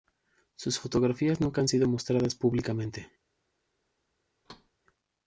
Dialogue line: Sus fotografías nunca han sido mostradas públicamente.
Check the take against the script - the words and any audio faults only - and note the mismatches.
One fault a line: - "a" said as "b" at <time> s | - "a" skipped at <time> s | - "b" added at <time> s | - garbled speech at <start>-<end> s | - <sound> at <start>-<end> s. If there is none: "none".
- thud at 4.4-4.7 s